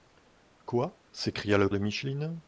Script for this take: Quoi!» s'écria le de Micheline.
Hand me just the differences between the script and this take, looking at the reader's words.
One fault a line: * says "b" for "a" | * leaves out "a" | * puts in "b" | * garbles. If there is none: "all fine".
all fine